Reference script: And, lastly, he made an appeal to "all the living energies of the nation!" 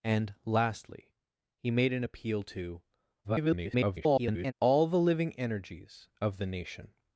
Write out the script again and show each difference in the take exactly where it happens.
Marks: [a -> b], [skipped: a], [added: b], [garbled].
And, lastly, he made an appeal to [garbled] "all the living energies of the nation!"